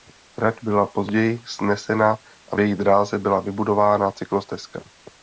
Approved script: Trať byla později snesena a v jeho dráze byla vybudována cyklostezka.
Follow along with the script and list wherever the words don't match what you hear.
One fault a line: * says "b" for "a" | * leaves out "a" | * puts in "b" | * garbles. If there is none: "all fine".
* says "její" for "jeho"